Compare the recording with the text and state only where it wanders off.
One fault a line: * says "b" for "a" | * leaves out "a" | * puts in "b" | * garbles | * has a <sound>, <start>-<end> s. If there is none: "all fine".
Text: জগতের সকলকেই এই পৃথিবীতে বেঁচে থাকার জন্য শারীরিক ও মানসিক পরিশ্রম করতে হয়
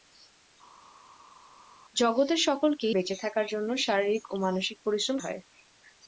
* leaves out "এই পৃথিবীতে"
* leaves out "করতে"